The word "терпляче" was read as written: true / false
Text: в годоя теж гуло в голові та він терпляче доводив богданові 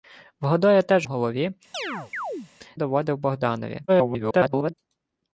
false